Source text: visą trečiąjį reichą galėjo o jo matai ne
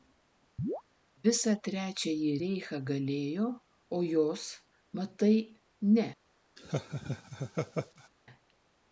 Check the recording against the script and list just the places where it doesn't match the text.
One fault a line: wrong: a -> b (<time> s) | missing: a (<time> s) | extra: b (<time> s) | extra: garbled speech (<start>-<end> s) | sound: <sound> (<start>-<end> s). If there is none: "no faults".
sound: chirp (0.6-0.8 s)
wrong: jo -> jos (4.1 s)
sound: laugh (6.6-8.1 s)